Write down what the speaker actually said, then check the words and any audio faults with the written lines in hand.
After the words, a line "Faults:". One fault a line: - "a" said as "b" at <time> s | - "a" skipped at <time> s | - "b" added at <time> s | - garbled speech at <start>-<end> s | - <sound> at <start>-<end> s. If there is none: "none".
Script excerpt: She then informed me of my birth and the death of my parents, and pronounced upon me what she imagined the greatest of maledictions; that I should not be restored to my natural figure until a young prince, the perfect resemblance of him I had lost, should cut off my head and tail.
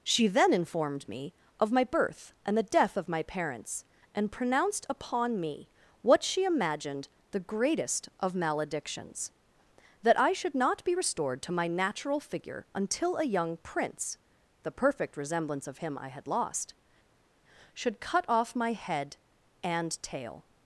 She then informed me of my birth and the death of my parents, and pronounced upon me what she imagined the greatest of maledictions; that I should not be restored to my natural figure until a young prince, the perfect resemblance of him I had lost, should cut off my head and tail.
Faults:
none